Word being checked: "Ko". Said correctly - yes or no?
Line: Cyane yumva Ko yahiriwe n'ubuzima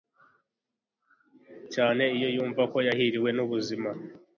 yes